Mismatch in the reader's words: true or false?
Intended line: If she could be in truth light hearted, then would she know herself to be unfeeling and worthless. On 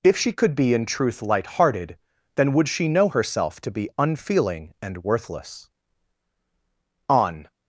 false